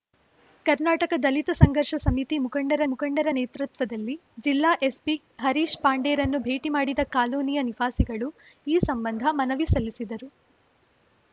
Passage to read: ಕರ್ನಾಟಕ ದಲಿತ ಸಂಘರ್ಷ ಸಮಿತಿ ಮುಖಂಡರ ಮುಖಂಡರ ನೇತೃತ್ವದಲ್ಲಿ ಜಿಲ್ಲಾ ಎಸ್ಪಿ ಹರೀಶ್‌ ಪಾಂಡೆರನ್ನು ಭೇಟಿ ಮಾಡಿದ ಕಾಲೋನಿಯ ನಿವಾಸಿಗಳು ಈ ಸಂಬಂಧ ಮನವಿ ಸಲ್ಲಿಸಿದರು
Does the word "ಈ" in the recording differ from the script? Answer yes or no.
no